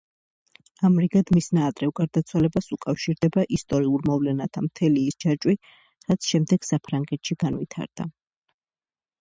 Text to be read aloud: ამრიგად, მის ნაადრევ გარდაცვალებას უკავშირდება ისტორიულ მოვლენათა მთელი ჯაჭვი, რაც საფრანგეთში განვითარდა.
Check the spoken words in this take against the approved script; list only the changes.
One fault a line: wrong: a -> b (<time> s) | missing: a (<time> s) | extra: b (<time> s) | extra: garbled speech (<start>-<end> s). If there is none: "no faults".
extra: ის (5.1 s)
extra: შემდეგ (6.3 s)